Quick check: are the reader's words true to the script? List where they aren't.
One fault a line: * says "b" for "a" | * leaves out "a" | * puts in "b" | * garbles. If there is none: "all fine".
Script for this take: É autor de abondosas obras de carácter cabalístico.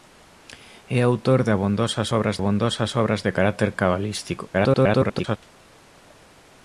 * puts in "abondosas obras"
* garbles